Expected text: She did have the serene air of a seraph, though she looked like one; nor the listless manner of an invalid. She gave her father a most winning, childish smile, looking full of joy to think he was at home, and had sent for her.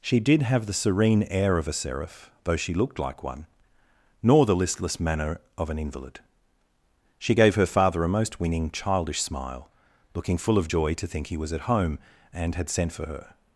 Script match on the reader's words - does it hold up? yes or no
yes